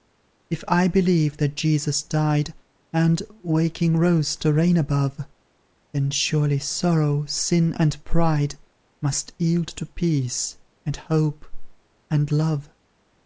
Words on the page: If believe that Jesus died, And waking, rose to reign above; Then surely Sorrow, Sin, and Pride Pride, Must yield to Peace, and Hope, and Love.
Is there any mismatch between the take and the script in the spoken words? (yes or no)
yes